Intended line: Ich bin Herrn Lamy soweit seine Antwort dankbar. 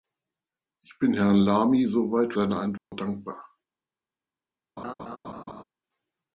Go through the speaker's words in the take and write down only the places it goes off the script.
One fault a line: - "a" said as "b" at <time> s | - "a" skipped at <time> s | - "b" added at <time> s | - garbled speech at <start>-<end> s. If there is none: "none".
none